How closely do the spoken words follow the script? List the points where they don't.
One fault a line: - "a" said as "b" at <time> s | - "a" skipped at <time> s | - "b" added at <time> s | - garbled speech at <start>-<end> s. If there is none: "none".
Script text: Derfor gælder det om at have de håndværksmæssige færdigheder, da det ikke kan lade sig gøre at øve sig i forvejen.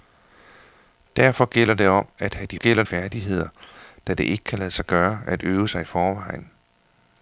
- "håndværksmæssige" said as "gælder" at 2.5 s